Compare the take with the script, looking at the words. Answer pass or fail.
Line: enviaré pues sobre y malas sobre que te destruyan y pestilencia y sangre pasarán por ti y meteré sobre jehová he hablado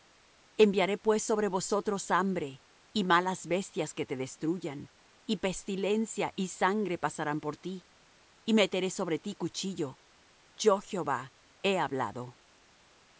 fail